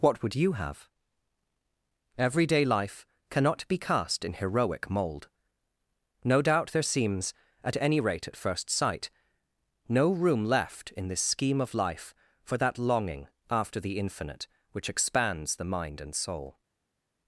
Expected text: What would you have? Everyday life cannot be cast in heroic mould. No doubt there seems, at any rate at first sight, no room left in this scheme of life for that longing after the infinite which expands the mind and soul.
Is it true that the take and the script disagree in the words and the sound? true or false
false